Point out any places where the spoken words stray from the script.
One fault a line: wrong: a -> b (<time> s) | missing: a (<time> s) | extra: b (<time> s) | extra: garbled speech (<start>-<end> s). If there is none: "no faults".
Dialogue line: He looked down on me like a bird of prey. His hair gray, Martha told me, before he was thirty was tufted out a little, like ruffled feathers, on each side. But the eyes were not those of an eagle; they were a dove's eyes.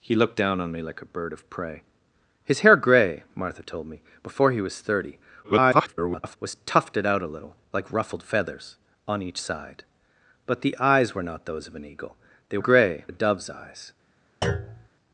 extra: garbled speech (5.4-6.4 s)
wrong: were -> gray (12.6 s)